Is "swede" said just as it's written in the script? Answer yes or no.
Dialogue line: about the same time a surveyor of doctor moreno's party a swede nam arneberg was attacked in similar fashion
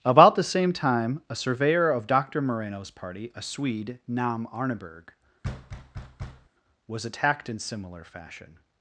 yes